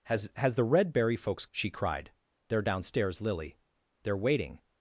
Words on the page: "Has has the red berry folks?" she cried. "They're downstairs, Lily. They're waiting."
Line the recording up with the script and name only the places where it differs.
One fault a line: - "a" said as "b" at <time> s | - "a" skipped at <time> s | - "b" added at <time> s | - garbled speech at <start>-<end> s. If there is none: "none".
none